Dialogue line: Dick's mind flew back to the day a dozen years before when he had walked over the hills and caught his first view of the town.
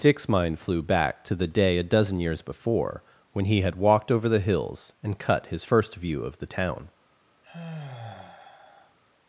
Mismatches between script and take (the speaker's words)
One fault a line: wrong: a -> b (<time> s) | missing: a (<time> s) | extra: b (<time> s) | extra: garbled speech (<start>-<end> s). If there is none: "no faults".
wrong: caught -> cut (5.2 s)